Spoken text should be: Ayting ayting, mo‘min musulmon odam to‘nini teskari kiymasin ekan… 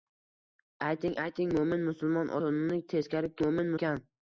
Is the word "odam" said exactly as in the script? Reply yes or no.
no